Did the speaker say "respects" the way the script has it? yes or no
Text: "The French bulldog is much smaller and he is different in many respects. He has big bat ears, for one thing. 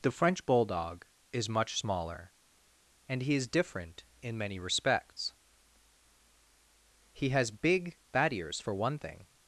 yes